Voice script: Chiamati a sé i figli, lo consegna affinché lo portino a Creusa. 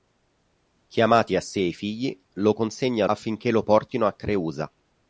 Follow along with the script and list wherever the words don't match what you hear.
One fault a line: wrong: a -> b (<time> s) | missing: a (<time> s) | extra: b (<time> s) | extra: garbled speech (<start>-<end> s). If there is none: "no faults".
no faults